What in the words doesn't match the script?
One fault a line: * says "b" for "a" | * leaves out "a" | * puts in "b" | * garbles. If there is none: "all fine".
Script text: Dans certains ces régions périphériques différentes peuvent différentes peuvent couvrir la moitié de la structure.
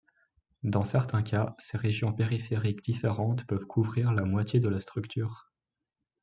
* puts in "cas"
* leaves out "différentes peuvent"